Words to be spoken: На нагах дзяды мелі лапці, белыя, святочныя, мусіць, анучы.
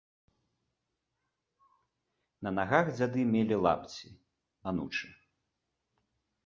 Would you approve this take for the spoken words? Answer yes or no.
no